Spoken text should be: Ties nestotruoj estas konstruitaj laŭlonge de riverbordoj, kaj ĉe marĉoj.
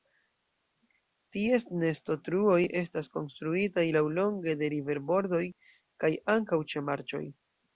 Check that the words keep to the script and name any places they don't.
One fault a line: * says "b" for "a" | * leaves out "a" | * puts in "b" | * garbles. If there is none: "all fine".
* puts in "ankaŭ"